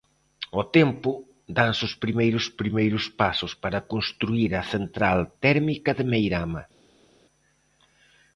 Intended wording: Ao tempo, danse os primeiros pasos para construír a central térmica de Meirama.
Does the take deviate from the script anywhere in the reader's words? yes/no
yes